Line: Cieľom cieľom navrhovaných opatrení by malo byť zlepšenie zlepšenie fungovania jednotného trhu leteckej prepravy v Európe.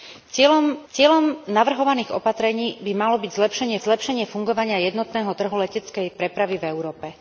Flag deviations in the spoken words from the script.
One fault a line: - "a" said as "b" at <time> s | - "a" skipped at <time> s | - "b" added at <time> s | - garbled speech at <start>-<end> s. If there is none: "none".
none